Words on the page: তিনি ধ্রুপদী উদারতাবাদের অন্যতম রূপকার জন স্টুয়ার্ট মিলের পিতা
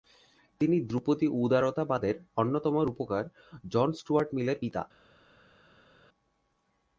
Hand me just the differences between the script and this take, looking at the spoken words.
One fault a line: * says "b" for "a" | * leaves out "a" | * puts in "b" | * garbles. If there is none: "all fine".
all fine